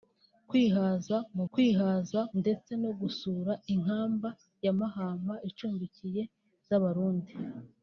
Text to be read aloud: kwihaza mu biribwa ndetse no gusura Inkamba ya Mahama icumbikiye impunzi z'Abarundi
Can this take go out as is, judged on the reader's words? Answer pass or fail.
fail